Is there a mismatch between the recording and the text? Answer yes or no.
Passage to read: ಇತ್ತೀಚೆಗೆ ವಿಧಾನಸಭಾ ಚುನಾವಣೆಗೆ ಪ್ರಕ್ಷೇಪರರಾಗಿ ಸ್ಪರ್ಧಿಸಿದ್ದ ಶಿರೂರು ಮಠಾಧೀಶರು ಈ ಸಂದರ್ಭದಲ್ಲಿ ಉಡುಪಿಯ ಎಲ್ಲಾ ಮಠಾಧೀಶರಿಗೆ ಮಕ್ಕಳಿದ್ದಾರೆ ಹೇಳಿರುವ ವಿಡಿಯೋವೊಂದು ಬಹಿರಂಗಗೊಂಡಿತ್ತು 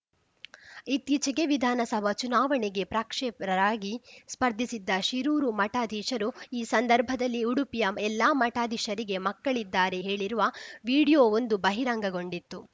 no